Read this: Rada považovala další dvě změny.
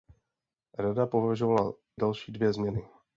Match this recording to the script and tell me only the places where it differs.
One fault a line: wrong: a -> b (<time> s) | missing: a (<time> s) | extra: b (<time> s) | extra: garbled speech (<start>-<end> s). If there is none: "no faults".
no faults